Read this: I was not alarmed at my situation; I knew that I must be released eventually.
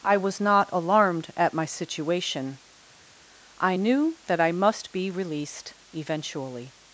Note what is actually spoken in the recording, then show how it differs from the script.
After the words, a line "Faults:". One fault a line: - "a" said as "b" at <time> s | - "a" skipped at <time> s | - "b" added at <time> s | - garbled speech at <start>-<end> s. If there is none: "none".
I was not alarmed at my situation; I knew that I must be released eventually.
Faults:
none